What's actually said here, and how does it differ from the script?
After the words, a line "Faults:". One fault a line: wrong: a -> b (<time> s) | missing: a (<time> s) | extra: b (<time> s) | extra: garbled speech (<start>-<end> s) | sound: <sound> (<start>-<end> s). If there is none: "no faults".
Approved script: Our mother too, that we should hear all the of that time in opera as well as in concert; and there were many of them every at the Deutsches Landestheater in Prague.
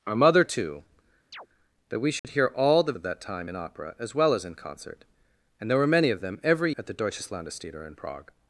Our mother too, that we should hear all the of that time in opera as well as in concert; and there were many of them every at the Deutsches Landestheater in Prague.
Faults:
sound: chirp (1.3-1.5 s)
sound: dropout (2.2-2.2 s)